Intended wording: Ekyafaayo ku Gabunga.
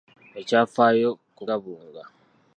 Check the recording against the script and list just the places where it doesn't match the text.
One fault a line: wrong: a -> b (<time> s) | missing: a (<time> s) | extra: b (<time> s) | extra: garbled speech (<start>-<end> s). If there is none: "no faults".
no faults